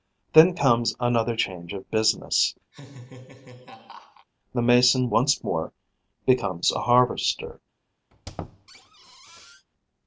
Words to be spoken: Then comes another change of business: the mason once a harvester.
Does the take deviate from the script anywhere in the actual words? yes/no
yes